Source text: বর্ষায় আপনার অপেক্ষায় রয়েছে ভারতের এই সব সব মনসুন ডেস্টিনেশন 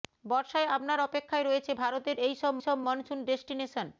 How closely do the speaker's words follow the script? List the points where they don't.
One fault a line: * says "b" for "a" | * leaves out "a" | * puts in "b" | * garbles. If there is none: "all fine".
all fine